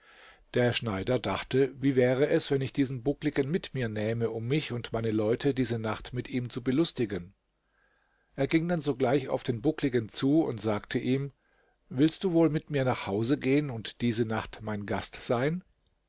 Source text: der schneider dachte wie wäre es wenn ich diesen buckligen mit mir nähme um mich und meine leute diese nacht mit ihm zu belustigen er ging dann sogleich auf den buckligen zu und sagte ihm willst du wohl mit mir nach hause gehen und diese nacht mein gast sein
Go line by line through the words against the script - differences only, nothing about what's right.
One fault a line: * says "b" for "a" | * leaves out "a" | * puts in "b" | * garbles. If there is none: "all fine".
all fine